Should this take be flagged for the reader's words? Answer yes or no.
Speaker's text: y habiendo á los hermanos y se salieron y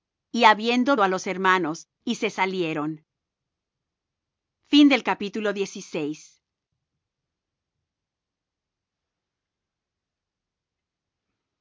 no